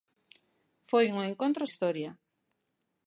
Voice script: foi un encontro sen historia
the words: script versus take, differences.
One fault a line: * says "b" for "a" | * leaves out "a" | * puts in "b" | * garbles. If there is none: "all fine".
* leaves out "sen"